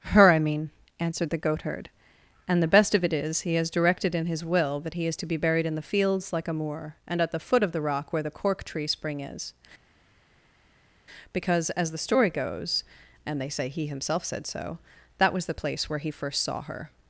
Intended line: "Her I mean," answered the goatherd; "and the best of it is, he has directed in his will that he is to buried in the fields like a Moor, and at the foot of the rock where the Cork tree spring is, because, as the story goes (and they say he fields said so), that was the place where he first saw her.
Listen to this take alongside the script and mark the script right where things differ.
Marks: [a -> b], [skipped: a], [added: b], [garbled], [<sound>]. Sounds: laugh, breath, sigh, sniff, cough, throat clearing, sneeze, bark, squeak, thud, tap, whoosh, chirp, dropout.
"Her I mean," answered the goatherd; "and the best of it is, he has directed in his will that he is to [added: be] buried in the fields like a Moor, and at the foot of the rock where the Cork tree spring is, because, as the story goes (and they say he [fields -> himself] said so), that was the place where he first saw her.